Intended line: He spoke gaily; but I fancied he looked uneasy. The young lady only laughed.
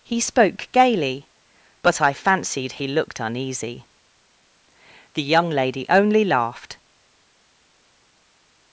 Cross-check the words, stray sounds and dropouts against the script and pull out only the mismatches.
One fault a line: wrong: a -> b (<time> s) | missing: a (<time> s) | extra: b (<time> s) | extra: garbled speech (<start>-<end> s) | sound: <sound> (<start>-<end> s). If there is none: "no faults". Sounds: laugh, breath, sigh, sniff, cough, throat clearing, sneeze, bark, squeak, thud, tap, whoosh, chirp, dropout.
no faults